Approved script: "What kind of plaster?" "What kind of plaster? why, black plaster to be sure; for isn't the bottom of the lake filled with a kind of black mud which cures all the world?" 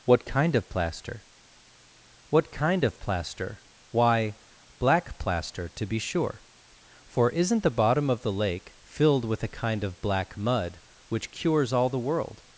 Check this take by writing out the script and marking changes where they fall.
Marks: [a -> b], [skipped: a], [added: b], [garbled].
"What kind of plaster?" "What kind of plaster? why, black plaster to be sure; for isn't the bottom of the lake filled with a kind of black mud which cures all the world?"